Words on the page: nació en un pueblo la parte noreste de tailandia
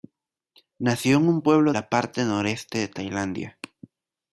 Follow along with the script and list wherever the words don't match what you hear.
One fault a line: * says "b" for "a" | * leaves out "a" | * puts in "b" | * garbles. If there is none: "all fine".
all fine